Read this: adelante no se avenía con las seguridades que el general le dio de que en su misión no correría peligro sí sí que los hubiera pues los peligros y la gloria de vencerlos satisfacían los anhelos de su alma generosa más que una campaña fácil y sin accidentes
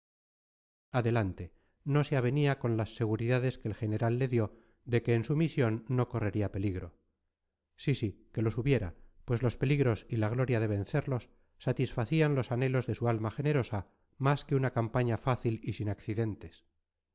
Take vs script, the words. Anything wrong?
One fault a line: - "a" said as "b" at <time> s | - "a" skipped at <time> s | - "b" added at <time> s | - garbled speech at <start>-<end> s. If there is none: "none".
none